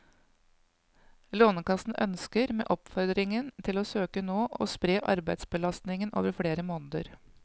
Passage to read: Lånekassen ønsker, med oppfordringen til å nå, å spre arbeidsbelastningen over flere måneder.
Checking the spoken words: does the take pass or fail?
fail